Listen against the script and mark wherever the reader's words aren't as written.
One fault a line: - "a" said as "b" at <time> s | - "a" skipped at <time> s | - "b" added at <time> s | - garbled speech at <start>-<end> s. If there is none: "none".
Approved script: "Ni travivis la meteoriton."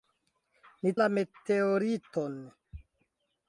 - "travivis" skipped at 0.9 s